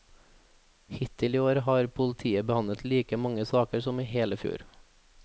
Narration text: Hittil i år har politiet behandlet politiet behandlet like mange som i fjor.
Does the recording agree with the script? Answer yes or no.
no